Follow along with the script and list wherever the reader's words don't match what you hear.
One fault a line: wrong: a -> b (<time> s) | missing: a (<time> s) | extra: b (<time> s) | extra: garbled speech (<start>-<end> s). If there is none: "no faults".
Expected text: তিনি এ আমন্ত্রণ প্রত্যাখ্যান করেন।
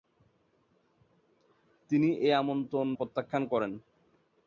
no faults